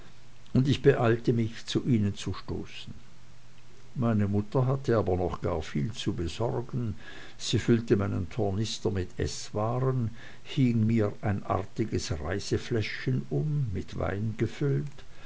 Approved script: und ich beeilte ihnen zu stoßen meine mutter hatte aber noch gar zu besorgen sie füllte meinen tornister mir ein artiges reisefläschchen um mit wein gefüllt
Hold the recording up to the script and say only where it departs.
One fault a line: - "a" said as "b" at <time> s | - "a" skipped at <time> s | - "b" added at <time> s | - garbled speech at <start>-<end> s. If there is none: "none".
- "mich zu" added at 1.3 s
- "viel" added at 5.6 s
- "mit eßwaren hing" added at 8.9 s